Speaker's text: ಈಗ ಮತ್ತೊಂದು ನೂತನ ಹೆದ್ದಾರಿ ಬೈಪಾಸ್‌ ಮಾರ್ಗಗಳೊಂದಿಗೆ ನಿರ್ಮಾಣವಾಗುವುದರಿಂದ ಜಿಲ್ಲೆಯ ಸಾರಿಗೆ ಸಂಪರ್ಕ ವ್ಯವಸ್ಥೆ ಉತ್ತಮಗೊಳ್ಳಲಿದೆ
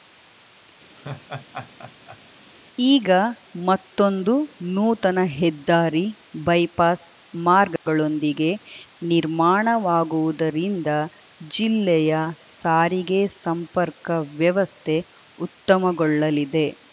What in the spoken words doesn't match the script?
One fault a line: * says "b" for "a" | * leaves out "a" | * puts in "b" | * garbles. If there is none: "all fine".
all fine